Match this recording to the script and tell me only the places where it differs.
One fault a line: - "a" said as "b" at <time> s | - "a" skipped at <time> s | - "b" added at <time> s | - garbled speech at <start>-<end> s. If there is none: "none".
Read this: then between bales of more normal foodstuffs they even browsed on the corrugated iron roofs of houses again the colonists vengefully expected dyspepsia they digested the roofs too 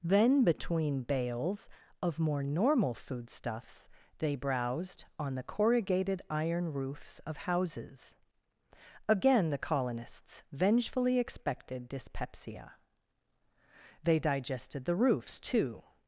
- "even" skipped at 4.3 s